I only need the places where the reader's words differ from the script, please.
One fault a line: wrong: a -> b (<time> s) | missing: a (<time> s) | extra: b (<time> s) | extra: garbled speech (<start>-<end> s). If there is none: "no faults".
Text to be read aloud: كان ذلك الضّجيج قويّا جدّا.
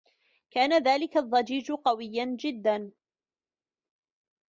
no faults